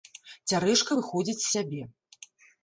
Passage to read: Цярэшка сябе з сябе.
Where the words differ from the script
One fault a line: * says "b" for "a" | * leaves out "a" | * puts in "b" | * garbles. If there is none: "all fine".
* says "выходзіць" for "сябе"